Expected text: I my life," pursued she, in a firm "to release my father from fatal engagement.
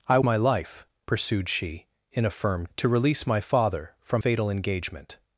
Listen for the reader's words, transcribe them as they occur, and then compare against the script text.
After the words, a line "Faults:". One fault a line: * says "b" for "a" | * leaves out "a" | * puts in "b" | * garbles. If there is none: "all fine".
I my life," pursued she, in a firm "to release my father from fatal engagement.
Faults:
all fine